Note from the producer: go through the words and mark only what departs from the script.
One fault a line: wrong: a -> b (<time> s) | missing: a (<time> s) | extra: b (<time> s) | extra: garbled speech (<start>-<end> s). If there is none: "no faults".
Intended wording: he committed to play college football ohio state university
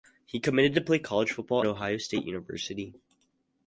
no faults